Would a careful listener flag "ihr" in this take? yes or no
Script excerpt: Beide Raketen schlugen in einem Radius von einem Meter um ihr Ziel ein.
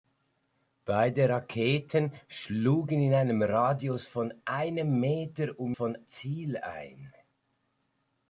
yes